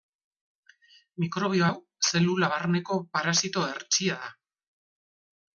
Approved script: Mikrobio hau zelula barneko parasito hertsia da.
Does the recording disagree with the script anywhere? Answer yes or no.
no